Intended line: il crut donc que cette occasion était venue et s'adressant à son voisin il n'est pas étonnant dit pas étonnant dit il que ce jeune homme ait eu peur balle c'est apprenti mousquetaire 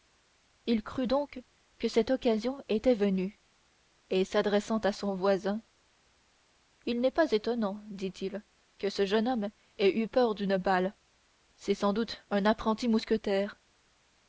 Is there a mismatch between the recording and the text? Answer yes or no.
yes